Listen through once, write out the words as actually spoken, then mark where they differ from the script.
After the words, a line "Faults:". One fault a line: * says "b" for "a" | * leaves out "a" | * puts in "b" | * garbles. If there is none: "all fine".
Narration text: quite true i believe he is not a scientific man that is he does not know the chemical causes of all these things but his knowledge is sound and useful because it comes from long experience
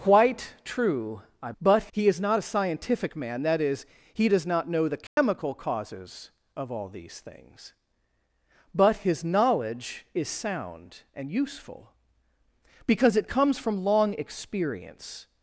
quite true i but he is not a scientific man that is he does not know the chemical causes of all these things but his knowledge is sound and useful because it comes from long experience
Faults:
* says "but" for "believe"